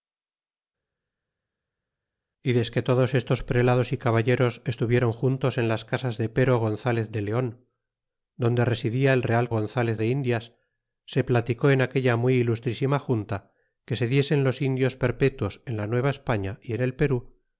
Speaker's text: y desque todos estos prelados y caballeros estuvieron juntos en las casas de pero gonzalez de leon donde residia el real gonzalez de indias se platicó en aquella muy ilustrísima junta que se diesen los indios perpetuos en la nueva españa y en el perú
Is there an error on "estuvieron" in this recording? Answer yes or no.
no